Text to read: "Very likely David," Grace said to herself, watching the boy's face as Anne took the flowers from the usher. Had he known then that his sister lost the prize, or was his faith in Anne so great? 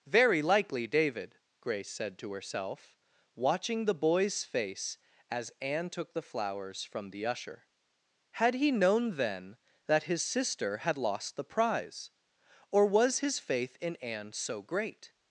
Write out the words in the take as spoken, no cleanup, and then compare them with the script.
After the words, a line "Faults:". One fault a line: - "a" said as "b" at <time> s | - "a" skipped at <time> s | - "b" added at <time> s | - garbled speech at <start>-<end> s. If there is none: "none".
"Very likely David," Grace said to herself, watching the boy's face as Anne took the flowers from the usher. Had he known then that his sister had lost the prize, or was his faith in Anne so great?
Faults:
- "had" added at 10.8 s